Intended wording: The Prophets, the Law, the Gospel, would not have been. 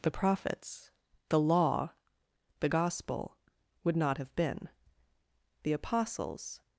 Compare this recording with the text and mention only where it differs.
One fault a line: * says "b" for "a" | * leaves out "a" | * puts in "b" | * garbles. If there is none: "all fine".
* puts in "The Apostles"